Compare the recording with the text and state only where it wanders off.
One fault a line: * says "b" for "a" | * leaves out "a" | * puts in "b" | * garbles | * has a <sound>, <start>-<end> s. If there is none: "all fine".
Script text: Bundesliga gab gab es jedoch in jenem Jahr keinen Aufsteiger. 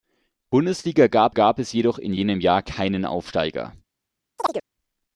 * has a chirp, 4.4-4.6 s